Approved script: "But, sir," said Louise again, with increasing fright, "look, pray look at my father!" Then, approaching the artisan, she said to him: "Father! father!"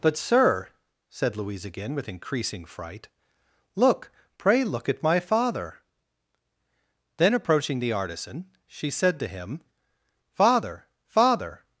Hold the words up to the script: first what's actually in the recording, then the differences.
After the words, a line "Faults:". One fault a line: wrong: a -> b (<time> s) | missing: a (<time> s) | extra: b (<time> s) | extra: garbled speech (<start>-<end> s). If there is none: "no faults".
"But, sir," said Louise again, with increasing fright, "look, pray look at my father!" Then, approaching the artisan, she said to him: "Father! father!"
Faults:
no faults